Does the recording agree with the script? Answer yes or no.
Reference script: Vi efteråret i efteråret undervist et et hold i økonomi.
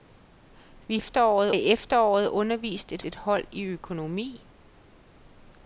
yes